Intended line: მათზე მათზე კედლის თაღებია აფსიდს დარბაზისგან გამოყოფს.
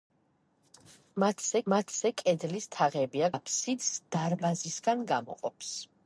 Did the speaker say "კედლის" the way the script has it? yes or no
yes